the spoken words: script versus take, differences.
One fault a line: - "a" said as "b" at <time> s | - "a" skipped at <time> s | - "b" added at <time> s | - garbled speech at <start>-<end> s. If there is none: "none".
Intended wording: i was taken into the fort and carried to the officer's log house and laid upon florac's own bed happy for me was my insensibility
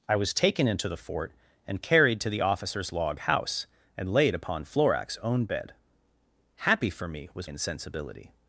- "my" skipped at 7.5 s